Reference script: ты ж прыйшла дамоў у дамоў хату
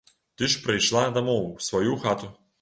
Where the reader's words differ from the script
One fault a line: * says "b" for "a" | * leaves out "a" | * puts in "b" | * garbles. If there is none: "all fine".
* says "сваю" for "дамоў"